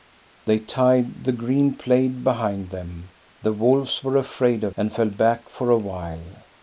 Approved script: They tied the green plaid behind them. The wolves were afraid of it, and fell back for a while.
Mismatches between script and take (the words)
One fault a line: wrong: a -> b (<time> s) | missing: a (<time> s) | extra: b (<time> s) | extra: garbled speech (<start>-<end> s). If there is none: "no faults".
missing: it (4.8 s)